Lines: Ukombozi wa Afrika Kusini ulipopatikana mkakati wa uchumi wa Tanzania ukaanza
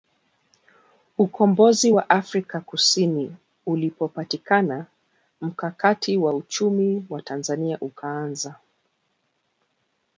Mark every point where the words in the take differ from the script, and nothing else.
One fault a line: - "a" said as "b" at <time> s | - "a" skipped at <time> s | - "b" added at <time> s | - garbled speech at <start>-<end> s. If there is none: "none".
none